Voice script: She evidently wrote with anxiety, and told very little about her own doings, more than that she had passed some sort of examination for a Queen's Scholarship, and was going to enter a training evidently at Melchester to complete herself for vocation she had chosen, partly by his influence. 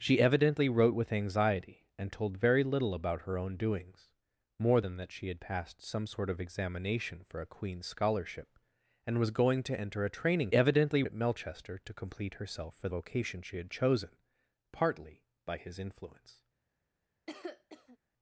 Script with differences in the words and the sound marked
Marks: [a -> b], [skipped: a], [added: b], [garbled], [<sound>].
She evidently wrote with anxiety, and told very little about her own doings, more than that she had passed some sort of examination for a Queen's Scholarship, and was going to enter a training evidently at Melchester to complete herself for vocation she had chosen, partly by his influence. [cough]